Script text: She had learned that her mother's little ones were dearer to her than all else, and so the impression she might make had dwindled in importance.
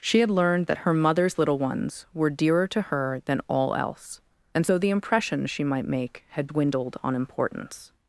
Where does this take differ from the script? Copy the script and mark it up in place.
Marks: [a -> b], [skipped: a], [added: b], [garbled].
She had learned that her mother's little ones were dearer to her than all else, and so the impression she might make had dwindled [in -> on] importance.